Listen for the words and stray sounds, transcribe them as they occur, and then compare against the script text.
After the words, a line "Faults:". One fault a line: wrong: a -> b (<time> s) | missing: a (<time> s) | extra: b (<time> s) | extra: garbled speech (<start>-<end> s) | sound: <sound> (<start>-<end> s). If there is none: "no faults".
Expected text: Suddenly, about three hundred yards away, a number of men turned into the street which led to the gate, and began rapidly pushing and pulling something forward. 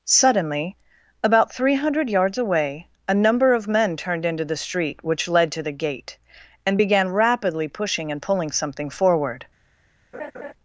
Suddenly, about three hundred yards away, a number of men turned into the street which led to the gate, and began rapidly pushing and pulling something forward.
Faults:
sound: laugh (10.1-10.5 s)